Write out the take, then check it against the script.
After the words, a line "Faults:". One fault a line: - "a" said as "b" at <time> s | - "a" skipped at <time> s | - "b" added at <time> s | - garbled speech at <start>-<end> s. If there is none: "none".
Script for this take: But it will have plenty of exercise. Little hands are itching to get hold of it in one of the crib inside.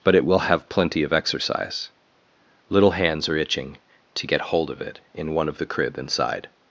But it will have plenty of exercise. Little hands are itching to get hold of it in one of the crib inside.
Faults:
none